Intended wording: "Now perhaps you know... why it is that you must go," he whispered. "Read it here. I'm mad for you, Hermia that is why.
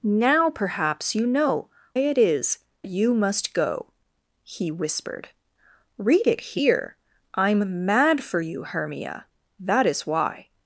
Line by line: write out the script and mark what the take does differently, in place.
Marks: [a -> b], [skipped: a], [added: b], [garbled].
"Now perhaps you know... [skipped: why] it is [skipped: that] you must go," he whispered. "Read it here. I'm mad for you, Hermia that is why.